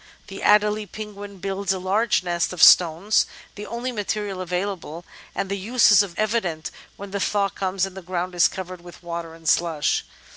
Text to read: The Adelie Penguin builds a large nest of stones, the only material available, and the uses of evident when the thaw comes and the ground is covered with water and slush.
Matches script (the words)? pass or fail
pass